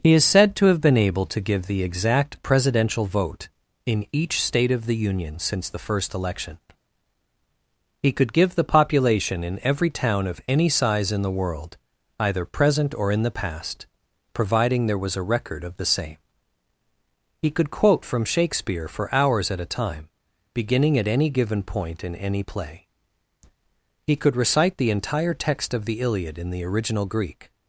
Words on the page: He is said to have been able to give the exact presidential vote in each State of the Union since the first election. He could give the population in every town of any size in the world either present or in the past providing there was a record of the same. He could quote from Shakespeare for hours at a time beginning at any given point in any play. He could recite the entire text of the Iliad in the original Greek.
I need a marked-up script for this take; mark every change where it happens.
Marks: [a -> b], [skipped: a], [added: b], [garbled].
He is said to have been able to give the exact presidential vote in each State of the Union since the first election. He could give the population in every town of any size in the world either present or in the past providing there was a record of the same. He could quote from Shakespeare for hours at a time beginning at any given point in any play. He could recite the entire text of the Iliad in the original Greek.